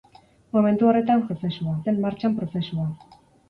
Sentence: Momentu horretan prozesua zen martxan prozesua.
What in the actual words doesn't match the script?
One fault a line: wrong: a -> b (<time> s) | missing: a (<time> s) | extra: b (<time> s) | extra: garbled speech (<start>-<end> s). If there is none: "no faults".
no faults